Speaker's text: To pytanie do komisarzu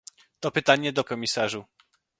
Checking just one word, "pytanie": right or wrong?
right